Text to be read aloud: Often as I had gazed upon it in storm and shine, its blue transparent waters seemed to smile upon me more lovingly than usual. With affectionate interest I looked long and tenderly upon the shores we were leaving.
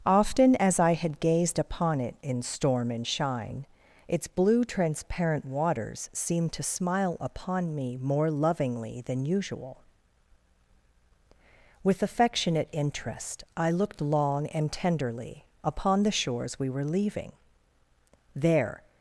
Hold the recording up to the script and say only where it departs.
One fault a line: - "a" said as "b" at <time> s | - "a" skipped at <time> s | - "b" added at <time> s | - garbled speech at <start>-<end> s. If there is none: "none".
- "There" added at 18.3 s